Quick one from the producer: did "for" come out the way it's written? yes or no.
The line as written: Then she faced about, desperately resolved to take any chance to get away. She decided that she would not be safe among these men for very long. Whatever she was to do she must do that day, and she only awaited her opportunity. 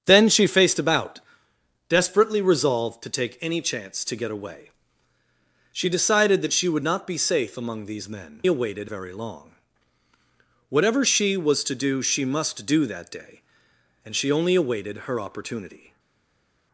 no